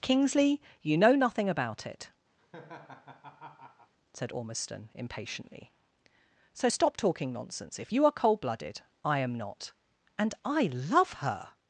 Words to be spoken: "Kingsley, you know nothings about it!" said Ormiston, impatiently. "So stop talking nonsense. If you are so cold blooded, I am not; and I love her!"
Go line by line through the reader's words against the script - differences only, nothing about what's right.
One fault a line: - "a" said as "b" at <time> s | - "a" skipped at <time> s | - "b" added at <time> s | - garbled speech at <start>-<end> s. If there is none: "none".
- "nothings" said as "nothing" at 1.1 s
- "so" skipped at 8.1 s